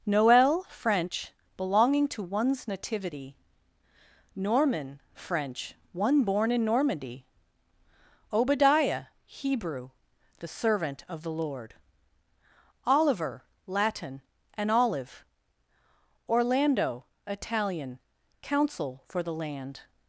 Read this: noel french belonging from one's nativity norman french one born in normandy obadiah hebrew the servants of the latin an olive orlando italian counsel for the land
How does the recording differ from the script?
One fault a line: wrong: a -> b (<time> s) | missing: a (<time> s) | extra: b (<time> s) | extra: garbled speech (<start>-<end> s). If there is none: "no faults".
wrong: from -> to (2.1 s)
wrong: servants -> servant (10.5 s)
extra: lord oliver (11.3 s)